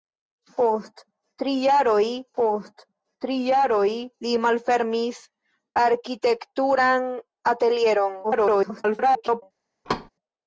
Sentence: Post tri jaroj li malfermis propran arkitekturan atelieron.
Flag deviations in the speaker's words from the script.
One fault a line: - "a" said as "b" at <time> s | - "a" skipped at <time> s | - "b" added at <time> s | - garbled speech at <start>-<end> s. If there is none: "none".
- "post tri jaroj" added at 2.4 s
- "propran" skipped at 5.2 s
- garbled speech at 8.2-9.4 s